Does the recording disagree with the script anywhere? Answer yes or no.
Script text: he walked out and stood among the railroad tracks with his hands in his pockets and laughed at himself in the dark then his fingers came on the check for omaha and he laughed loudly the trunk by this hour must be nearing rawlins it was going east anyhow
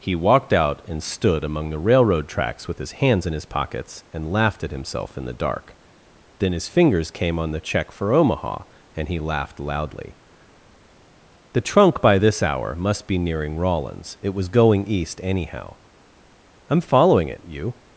yes